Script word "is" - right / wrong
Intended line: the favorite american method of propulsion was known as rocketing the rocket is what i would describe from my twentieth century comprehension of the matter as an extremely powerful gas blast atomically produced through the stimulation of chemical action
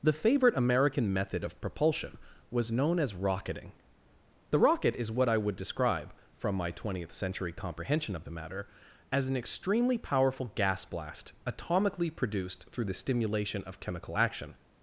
right